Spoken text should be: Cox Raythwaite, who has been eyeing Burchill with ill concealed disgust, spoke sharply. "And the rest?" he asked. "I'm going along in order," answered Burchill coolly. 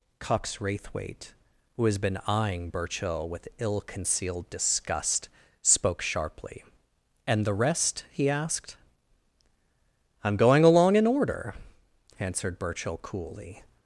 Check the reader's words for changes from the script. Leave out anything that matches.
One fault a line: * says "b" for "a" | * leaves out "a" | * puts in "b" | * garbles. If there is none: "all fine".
all fine